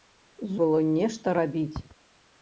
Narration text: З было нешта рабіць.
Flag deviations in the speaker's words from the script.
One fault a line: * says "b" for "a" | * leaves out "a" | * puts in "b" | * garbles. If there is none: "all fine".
all fine